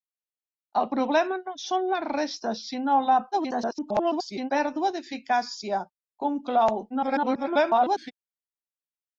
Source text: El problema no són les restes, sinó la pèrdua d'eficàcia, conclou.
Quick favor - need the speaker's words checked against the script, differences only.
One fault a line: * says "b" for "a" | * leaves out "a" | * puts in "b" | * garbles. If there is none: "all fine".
* garbles
* garbles